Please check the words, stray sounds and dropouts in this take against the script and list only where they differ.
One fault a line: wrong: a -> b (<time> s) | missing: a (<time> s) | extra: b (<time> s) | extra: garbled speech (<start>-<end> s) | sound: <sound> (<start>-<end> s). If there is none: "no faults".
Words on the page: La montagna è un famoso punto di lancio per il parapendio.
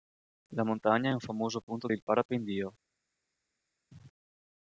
missing: di lancio per (1.9 s)